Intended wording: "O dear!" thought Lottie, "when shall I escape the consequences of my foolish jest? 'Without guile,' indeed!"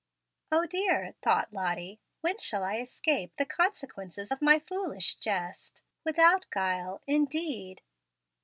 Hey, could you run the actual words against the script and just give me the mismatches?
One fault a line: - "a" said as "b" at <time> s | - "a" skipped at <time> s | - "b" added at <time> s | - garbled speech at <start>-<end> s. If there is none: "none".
none